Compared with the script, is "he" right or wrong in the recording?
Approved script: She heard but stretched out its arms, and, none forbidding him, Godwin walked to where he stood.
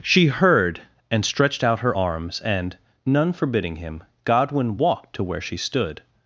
wrong